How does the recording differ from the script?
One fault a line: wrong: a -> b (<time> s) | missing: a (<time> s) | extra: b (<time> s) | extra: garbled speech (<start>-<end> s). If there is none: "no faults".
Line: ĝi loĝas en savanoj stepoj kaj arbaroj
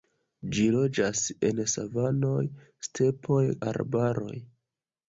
missing: kaj (3.5 s)